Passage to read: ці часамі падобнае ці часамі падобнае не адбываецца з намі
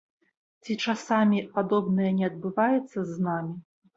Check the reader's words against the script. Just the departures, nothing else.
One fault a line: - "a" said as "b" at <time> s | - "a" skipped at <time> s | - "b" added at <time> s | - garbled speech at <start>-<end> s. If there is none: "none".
- "ці часамі падобнае" skipped at 2.1 s